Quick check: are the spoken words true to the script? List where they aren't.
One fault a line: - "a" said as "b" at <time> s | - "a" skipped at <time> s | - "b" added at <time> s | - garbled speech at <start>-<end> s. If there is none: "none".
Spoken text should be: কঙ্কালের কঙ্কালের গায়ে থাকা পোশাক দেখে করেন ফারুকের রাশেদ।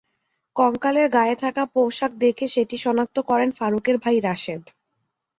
- "কঙ্কালের" skipped at 1.1 s
- "সেটি শনাক্ত" added at 2.5 s
- "ভাই" added at 4.0 s